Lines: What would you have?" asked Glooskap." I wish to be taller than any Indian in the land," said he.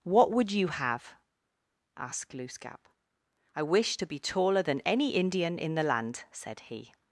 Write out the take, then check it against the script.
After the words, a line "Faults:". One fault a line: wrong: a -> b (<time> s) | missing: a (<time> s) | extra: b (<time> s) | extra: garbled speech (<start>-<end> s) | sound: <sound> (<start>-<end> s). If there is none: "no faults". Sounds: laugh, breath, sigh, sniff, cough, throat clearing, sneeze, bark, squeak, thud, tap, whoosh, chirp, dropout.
What would you have?" asked Glooskap." I wish to be taller than any Indian in the land," said he.
Faults:
no faults